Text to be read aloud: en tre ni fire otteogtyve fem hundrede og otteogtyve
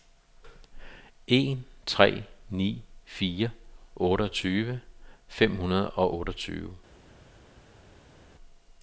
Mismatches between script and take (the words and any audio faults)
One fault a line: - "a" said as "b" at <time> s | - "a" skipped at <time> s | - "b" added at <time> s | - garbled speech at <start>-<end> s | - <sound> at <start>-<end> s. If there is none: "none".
none